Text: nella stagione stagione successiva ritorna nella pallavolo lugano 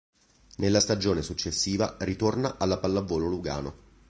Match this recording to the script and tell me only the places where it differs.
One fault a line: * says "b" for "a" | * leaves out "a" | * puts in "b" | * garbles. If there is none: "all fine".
* leaves out "stagione"
* says "alla" for "nella"